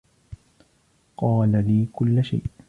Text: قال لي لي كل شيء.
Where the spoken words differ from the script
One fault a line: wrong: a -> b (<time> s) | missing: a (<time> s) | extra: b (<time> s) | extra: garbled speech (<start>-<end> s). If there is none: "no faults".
missing: لي (1.9 s)